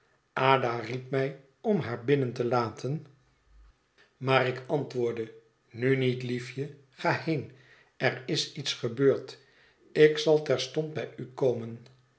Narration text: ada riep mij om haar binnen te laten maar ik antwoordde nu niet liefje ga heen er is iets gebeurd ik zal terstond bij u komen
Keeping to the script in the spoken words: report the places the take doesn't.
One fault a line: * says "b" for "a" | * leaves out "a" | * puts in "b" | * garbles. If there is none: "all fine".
all fine